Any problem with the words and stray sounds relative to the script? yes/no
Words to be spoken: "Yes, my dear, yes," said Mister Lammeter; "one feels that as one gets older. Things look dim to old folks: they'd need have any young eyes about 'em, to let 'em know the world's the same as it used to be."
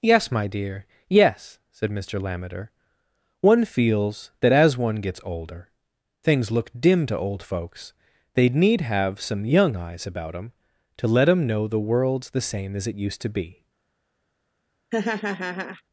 yes